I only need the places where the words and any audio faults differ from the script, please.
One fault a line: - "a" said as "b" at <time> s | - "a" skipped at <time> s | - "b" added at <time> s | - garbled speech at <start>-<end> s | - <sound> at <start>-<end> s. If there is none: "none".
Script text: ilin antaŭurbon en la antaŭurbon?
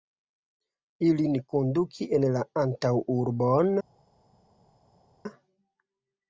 - "antaŭurbon" said as "konduki" at 1.5 s